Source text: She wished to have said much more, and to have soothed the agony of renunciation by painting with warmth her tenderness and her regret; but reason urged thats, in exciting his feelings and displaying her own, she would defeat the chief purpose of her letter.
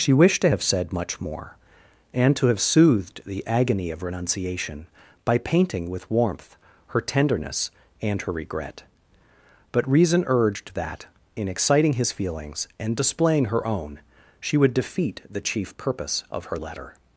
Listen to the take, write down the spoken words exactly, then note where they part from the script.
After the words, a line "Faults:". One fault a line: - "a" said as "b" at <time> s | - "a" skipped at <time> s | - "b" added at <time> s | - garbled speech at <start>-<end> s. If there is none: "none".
She wished to have said much more, and to have soothed the agony of renunciation by painting with warmth her tenderness and her regret; but reason urged that, in exciting his feelings and displaying her own, she would defeat the chief purpose of her letter.
Faults:
- "thats" said as "that" at 10.7 s